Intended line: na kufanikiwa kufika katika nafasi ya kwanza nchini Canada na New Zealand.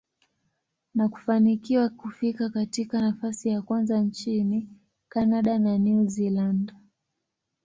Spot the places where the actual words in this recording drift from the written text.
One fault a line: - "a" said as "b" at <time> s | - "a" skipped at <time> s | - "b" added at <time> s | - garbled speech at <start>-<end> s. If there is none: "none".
none